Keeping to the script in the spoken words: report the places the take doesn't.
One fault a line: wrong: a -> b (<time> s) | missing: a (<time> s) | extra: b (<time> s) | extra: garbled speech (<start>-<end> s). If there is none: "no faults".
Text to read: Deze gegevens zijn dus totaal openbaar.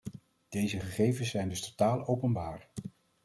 no faults